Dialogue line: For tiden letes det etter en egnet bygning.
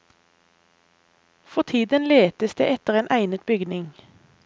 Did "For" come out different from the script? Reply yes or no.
no